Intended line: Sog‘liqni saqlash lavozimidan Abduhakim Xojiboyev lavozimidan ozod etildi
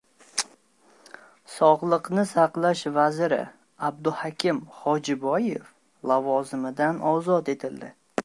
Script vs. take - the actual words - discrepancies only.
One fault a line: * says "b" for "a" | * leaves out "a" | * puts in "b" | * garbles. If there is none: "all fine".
* says "vaziri" for "lavozimidan"